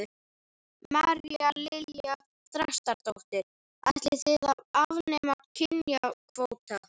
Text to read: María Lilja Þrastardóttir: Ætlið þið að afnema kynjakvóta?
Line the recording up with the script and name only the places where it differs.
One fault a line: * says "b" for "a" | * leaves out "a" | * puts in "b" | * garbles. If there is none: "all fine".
all fine